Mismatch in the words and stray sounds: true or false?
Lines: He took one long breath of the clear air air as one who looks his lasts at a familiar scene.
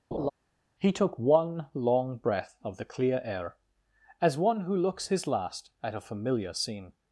true